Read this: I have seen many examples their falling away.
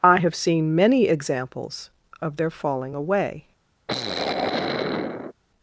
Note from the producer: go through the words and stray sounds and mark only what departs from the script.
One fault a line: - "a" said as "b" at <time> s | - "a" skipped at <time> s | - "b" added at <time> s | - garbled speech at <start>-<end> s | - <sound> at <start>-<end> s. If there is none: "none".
- "of" added at 2.2 s
- sigh at 3.9-5.3 s